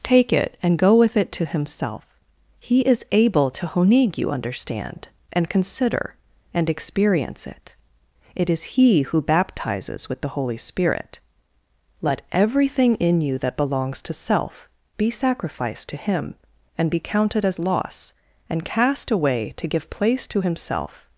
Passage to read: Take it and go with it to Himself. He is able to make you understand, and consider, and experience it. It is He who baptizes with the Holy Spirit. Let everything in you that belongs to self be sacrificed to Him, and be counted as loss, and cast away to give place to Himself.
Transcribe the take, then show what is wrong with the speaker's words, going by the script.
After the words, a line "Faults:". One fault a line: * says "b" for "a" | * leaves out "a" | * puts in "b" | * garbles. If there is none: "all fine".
Take it and go with it to Himself. He is able to honig you understand, and consider, and experience it. It is He who baptizes with the Holy Spirit. Let everything in you that belongs to self be sacrificed to Him, and be counted as loss, and cast away to give place to Himself.
Faults:
* says "honig" for "make"